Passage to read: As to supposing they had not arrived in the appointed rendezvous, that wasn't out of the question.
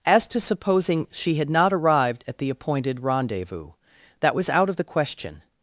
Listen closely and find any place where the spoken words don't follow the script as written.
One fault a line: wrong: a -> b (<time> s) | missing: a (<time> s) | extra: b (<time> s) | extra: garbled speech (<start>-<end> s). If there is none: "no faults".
wrong: they -> she (1.1 s)
wrong: in -> at (2.3 s)
wrong: wasn't -> was (4.3 s)